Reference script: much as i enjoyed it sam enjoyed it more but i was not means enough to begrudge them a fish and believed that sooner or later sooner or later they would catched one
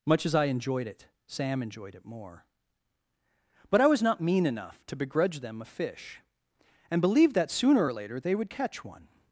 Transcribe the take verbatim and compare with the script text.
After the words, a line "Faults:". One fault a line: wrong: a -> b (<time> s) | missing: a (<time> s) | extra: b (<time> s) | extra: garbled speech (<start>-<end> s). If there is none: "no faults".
much as i enjoyed it sam enjoyed it more but i was not mean enough to begrudge them a fish and believed that sooner or later they would catch one
Faults:
wrong: means -> mean (4.2 s)
missing: sooner or later (8.2 s)
wrong: catched -> catch (8.5 s)